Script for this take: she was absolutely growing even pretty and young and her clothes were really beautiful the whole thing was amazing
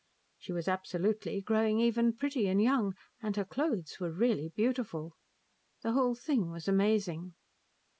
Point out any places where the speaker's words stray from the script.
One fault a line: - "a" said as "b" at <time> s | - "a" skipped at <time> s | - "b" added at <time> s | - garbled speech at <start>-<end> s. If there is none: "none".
none